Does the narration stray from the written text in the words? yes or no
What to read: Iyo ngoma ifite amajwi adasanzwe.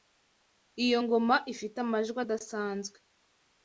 no